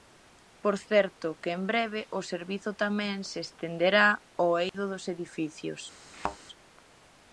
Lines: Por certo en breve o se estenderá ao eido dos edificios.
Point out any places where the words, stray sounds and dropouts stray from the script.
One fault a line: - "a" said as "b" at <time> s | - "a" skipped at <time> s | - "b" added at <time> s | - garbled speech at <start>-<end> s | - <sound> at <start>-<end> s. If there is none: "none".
- "que" added at 1.4 s
- "servizo tamén" added at 2.3 s
- dropout at 4.7-4.7 s
- thud at 6.1-6.4 s